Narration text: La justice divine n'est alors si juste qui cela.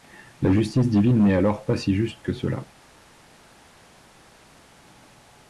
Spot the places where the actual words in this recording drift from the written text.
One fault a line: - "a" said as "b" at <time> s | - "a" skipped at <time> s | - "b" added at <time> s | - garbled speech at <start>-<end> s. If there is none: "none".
- "pas" added at 1.6 s
- "qui" said as "que" at 2.2 s